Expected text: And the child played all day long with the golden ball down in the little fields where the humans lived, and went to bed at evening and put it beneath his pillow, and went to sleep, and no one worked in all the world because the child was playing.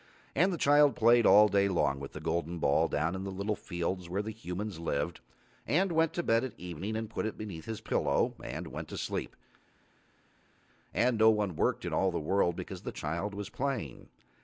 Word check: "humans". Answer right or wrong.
right